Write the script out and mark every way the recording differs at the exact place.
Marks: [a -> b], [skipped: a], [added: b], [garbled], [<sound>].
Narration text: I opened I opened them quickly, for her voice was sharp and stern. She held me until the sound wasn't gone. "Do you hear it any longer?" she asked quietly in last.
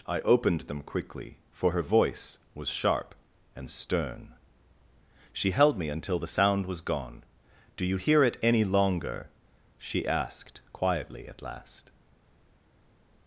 I opened [skipped: I opened] them quickly, for her voice was sharp and stern. She held me until the sound [wasn't -> was] gone. "Do you hear it any longer?" she asked quietly [in -> at] last.